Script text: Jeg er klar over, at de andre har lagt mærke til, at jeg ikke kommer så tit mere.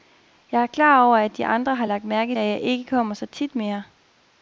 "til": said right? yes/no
no